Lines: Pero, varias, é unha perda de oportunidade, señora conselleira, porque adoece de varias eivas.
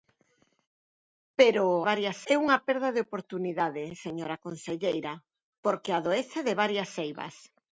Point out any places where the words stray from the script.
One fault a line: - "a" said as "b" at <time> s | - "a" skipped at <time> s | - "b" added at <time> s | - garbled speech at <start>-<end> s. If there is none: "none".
none